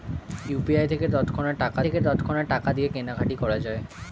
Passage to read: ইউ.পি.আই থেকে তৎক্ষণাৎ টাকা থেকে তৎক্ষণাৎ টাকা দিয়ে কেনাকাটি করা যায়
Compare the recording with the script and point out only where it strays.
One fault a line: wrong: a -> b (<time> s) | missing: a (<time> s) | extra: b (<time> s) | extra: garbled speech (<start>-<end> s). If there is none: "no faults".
no faults